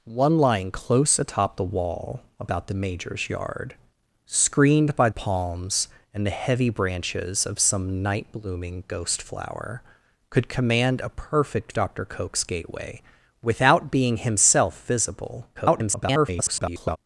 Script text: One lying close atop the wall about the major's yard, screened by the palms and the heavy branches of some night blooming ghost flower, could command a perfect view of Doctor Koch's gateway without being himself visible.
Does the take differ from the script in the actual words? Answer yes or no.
yes